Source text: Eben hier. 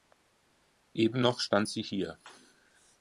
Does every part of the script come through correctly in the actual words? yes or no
no